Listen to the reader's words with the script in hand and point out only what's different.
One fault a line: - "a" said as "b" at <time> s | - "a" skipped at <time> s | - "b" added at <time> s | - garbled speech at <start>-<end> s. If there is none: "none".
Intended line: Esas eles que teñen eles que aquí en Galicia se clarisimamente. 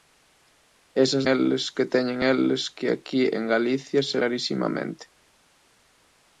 none